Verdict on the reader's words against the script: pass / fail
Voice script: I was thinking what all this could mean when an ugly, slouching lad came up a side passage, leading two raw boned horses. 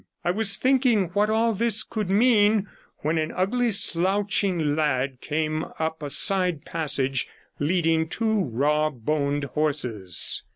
pass